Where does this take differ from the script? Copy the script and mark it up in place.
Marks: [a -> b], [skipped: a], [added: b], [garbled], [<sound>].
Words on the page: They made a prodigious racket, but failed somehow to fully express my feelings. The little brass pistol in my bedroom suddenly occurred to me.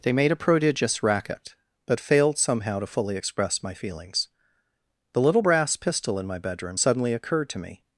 They made a prodigious racket, but failed somehow to fully express my feelings. The little brass pistol in my bedroom suddenly occurred to me.